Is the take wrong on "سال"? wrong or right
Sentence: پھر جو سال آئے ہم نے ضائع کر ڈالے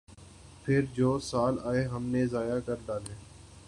right